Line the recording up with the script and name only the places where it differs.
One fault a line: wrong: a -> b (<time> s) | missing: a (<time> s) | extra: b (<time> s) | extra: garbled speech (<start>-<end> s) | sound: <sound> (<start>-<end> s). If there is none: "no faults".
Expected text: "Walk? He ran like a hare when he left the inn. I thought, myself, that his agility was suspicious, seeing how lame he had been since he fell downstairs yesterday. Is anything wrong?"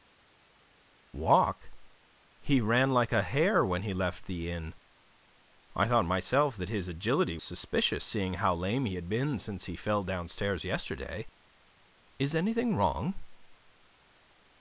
missing: was (7.4 s)